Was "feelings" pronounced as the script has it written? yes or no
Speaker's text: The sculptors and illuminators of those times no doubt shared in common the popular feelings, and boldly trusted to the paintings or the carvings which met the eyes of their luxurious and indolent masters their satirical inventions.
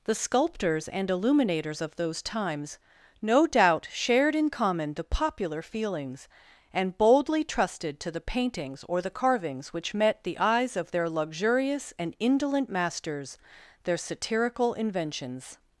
yes